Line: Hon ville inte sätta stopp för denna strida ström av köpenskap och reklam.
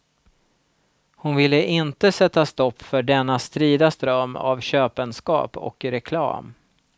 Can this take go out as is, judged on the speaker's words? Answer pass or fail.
pass